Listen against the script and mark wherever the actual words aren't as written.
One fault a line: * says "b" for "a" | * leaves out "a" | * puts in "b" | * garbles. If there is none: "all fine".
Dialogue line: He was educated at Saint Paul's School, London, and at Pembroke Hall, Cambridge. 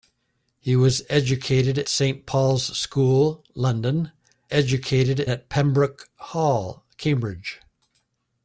* leaves out "at"
* says "educated" for "and"